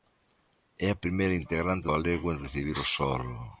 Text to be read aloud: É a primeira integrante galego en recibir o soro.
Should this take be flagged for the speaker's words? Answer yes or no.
no